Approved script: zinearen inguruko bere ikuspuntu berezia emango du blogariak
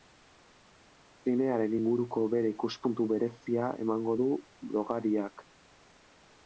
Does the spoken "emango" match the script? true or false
true